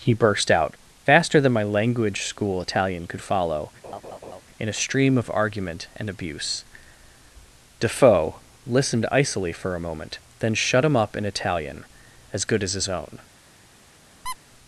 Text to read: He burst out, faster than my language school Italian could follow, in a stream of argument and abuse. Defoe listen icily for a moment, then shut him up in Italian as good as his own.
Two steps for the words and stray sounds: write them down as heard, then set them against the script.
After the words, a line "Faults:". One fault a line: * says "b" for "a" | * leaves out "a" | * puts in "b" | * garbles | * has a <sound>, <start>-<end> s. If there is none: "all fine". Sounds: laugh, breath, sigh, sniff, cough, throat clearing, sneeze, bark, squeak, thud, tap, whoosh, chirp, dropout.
He burst out, faster than my language school Italian could follow, in a stream of argument and abuse. Defoe listened icily for a moment, then shut him up in Italian as good as his own.
Faults:
* has a laugh, 3.8-4.4 s
* says "listened" for "listen"
* has a squeak, 14.3-14.4 s